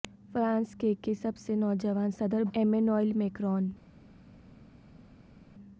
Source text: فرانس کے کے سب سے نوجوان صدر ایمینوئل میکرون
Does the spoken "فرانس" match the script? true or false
true